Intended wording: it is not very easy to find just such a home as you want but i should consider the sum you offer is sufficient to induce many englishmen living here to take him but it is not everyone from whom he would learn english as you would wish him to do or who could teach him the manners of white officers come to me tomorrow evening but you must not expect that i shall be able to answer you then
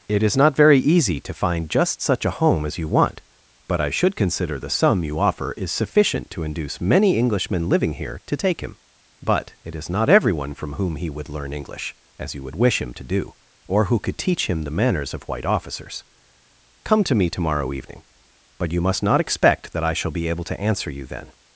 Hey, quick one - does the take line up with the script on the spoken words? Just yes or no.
yes